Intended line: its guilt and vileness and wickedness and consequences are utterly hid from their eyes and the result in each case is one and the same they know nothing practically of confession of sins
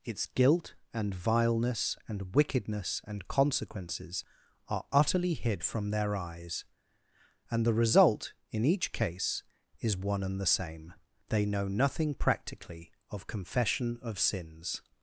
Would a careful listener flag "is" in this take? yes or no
no